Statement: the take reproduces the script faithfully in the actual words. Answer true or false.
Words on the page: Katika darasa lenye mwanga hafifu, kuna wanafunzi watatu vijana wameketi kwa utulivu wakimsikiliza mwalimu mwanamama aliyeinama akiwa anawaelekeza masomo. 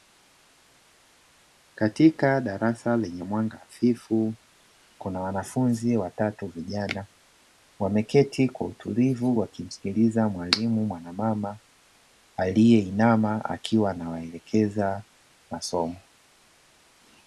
true